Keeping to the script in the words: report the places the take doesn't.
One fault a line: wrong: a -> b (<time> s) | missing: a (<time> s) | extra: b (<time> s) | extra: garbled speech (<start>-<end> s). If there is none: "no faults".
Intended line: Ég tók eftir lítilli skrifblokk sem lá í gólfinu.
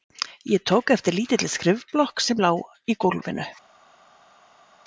no faults